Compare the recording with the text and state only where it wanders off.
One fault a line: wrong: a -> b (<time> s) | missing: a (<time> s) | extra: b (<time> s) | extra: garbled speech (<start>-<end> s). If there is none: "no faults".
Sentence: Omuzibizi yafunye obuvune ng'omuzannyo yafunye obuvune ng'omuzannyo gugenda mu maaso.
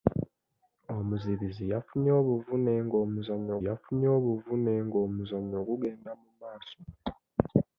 no faults